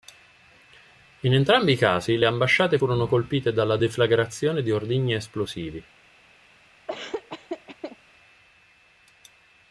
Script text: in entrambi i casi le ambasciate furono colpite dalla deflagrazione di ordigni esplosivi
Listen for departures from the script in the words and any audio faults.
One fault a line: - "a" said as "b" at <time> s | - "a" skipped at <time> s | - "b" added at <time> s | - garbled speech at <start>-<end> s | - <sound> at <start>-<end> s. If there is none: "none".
- laugh at 6.9-8.0 s